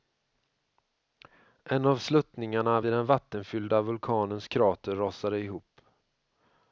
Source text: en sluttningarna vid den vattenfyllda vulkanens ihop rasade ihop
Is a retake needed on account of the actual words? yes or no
yes